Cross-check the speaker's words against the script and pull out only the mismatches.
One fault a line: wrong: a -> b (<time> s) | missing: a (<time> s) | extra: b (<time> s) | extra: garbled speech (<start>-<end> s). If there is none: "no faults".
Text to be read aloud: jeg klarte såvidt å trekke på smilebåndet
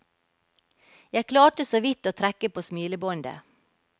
no faults